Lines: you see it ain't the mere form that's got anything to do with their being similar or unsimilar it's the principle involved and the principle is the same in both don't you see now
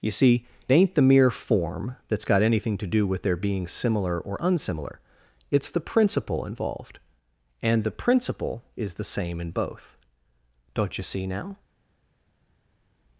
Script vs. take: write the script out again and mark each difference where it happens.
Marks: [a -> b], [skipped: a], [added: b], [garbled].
you see [skipped: it] ain't the mere form that's got anything to do with their being similar or unsimilar it's the principle involved and the principle is the same in both don't you see now